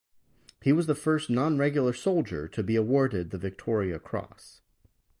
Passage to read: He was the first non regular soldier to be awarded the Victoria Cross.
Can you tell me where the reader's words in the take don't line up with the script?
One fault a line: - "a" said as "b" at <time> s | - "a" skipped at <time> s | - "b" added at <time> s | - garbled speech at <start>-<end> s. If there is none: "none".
none